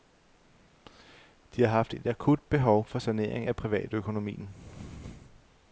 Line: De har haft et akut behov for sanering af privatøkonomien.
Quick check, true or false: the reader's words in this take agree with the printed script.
true